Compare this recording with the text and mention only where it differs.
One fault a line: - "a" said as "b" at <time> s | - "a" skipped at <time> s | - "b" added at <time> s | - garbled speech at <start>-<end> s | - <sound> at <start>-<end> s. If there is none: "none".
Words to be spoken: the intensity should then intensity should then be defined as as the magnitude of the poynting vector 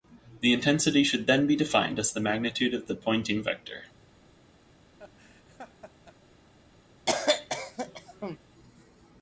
- "intensity should then" skipped at 1.4 s
- "as" skipped at 2.1 s
- laugh at 5.0-6.1 s
- cough at 7.1-8.4 s